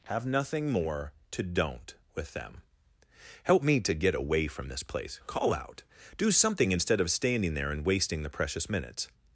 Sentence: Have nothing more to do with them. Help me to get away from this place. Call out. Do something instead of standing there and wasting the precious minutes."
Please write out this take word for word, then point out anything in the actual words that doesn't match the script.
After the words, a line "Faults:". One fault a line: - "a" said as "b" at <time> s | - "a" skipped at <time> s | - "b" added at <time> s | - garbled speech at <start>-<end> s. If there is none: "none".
Have nothing more to don't with them. Help me to get away from this place. Call out. Do something instead of standing there and wasting the precious minutes."
Faults:
- "do" said as "don't" at 1.4 s